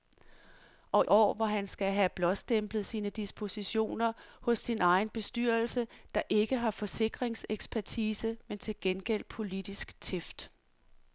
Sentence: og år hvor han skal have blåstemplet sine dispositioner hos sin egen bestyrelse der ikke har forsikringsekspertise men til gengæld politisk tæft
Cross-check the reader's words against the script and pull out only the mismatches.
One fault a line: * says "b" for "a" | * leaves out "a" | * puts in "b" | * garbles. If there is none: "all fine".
all fine